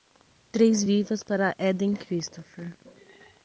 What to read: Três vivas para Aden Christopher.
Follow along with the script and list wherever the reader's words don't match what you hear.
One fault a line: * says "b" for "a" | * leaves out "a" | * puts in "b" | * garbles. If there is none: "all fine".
all fine